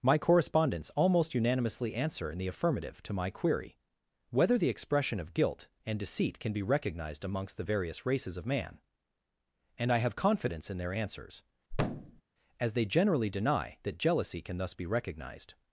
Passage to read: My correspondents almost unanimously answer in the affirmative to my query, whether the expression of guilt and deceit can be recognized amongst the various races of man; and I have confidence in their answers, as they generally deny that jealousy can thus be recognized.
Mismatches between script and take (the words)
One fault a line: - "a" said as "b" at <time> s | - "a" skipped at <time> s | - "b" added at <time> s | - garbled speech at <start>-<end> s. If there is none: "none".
none